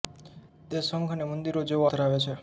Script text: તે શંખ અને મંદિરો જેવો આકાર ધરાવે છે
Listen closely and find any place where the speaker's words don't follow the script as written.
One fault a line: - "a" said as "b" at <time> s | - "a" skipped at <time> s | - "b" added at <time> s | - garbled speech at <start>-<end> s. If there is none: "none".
- "આકાર" skipped at 1.9 s